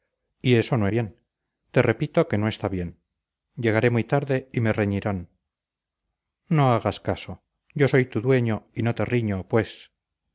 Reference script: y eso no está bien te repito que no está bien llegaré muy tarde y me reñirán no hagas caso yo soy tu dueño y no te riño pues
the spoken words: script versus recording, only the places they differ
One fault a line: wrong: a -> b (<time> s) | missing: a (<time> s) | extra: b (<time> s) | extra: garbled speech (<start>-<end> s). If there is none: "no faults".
missing: está (0.9 s)